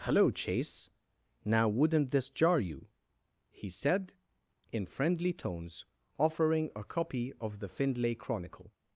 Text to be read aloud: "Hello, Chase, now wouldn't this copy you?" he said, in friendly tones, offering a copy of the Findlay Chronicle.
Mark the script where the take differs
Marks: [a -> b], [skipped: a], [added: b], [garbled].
"Hello, Chase, now wouldn't this [copy -> jar] you?" he said, in friendly tones, offering a copy of the Findlay Chronicle.